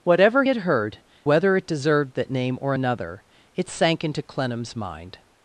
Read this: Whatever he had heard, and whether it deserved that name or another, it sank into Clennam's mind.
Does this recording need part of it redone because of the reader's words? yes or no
yes